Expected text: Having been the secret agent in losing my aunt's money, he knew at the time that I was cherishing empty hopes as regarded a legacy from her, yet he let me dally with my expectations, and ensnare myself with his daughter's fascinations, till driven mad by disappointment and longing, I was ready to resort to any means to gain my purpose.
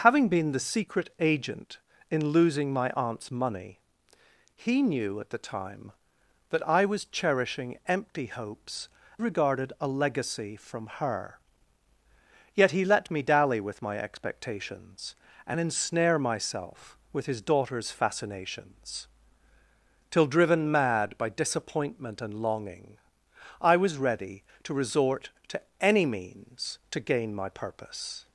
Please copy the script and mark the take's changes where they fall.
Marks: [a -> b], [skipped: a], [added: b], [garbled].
Having been the secret agent in losing my aunt's money, he knew at the time that I was cherishing empty hopes [skipped: as] regarded a legacy from her, yet he let me dally with my expectations, and ensnare myself with his daughter's fascinations, till driven mad by disappointment and longing, I was ready to resort to any means to gain my purpose.